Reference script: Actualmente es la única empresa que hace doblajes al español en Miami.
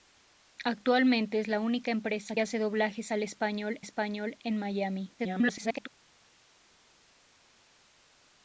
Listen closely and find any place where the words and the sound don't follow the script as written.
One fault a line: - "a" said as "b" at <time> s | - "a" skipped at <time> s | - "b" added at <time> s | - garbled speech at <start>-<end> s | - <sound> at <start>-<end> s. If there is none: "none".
- "que" skipped at 2.4 s
- "español" added at 3.8 s
- garbled speech at 5.2-5.9 s